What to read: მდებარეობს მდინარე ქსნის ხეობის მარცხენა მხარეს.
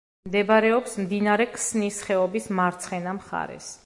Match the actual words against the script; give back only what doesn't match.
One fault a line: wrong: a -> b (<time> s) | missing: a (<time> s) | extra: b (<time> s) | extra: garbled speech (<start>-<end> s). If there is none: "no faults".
no faults